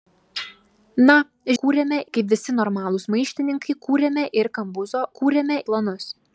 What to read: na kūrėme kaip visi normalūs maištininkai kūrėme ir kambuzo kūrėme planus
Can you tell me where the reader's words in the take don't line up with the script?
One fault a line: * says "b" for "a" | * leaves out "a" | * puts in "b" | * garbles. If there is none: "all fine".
all fine